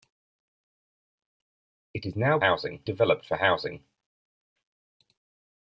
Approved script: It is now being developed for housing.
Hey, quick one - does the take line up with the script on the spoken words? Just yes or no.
no